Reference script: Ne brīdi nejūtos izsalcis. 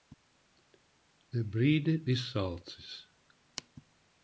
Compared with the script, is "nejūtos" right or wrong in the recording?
wrong